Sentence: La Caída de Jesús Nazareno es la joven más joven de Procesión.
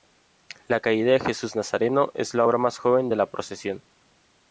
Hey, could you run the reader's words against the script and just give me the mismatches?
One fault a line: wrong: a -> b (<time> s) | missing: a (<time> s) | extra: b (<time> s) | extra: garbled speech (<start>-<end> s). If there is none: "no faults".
wrong: joven -> obra (2.4 s)
extra: la (3.1 s)